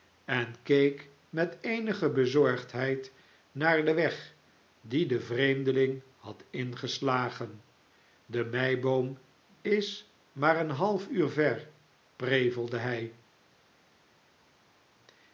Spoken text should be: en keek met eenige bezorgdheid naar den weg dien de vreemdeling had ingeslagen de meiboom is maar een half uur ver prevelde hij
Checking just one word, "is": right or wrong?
right